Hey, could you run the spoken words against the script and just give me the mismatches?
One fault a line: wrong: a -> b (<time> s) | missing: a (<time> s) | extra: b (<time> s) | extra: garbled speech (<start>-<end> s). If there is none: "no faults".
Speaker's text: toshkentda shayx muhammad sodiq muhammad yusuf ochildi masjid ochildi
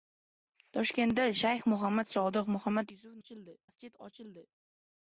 no faults